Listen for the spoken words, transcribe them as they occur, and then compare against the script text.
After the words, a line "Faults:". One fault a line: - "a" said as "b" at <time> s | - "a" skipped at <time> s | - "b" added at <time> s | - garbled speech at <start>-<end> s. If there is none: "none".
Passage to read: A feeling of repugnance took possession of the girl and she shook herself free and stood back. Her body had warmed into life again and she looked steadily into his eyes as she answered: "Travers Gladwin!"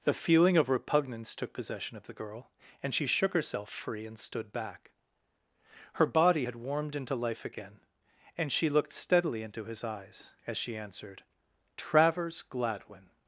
The feeling of repugnance took possession of the girl and she shook herself free and stood back. Her body had warmed into life again and she looked steadily into his eyes as she answered: "Travers Gladwin!"
Faults:
- "A" said as "The" at 0.0 s